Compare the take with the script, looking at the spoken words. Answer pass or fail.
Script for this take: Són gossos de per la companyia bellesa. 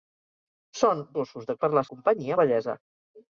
pass